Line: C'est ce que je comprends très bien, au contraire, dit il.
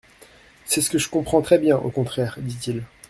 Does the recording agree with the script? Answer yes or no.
yes